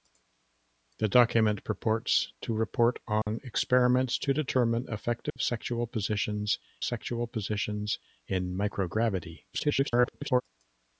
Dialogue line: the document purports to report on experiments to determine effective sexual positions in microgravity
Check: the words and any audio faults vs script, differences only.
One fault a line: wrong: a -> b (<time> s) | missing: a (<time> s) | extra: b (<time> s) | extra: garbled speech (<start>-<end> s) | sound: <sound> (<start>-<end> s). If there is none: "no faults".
sound: dropout (3.2-3.3 s)
sound: dropout (5.3-5.4 s)
extra: sexual positions (6.8 s)
extra: garbled speech (9.5-10.4 s)